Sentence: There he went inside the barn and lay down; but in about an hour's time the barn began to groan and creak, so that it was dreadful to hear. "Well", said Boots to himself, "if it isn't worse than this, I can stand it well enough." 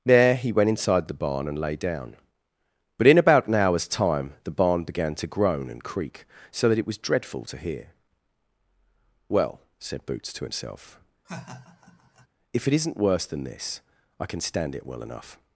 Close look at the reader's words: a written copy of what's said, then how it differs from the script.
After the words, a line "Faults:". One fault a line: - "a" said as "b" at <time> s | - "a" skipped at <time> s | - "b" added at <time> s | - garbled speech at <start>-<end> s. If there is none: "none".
There he went inside the barn and lay down; but in about an hour's time the barn began to groan and creak, so that it was dreadful to hear. "Well", said Boots to himself, "if it isn't worse than this, I can stand it well enough."
Faults:
none